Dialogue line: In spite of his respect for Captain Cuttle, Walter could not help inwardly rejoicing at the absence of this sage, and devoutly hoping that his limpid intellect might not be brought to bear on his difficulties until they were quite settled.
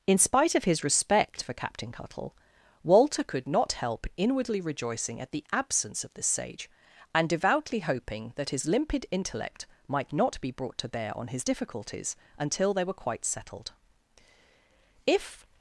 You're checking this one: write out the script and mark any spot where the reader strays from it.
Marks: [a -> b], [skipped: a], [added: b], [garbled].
In spite of his respect for Captain Cuttle, Walter could not help inwardly rejoicing at the absence of this sage, and devoutly hoping that his limpid intellect might not be brought to bear on his difficulties until they were quite settled. [added: If]